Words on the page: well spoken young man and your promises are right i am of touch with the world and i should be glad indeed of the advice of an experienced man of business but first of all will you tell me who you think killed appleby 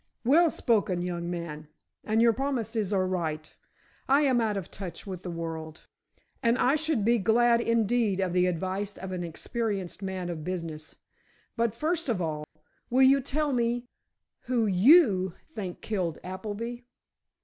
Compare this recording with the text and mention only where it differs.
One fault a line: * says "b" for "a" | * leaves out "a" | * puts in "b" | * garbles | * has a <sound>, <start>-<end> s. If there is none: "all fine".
* puts in "out"
* has a dropout, 12.4-12.6 s